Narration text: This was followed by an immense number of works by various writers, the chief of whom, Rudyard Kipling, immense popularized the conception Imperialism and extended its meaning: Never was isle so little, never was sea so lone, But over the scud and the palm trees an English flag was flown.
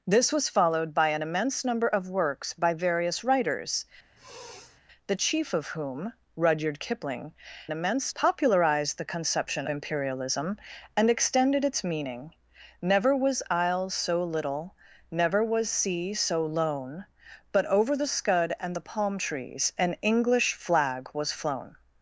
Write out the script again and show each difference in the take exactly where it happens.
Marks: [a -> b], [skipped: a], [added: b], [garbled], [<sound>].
This was followed by an immense number of works by various writers, [sniff] the chief of whom, Rudyard Kipling, immense popularized the conception Imperialism and extended its meaning: Never was isle so little, never was sea so lone, But over the scud and the palm trees an English flag was flown.